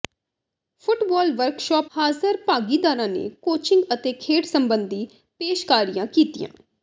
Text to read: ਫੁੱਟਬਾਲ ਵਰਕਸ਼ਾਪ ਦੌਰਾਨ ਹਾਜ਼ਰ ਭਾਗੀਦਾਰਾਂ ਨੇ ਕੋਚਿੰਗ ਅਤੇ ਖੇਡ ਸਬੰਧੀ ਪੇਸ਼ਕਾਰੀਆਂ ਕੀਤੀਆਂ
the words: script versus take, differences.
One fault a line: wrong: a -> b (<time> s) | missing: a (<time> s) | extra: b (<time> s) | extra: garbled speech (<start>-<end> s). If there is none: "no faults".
missing: ਦੌਰਾਨ (1.9 s)